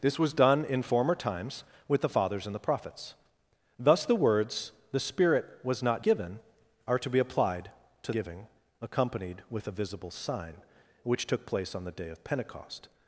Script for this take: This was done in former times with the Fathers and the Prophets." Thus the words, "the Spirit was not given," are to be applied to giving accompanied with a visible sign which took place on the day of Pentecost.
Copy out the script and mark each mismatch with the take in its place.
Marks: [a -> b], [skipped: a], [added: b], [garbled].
This was done in former times with the Fathers and the Prophets." Thus the words, "the Spirit was not given," are to be applied to giving accompanied with a visible sign which took place on the day of Pentecost.